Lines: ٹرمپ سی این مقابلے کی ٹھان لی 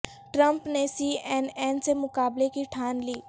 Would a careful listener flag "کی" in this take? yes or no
no